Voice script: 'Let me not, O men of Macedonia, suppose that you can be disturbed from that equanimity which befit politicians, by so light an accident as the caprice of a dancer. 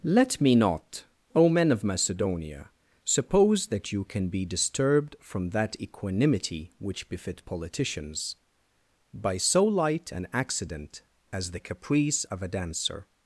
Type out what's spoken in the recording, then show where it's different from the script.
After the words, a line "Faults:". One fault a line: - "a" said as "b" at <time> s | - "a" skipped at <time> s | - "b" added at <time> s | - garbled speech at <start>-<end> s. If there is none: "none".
'Let me not, O men of Macedonia, suppose that you can be disturbed from that equanimity which befit politicians, by so light an accident as the caprice of a dancer.
Faults:
none